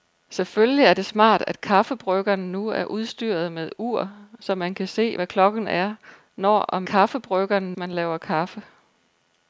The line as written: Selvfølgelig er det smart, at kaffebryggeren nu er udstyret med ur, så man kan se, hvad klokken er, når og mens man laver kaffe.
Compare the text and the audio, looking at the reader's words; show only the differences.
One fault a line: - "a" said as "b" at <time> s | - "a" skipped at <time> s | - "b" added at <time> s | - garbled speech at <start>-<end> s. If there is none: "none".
- "mens" said as "kaffebryggeren" at 6.8 s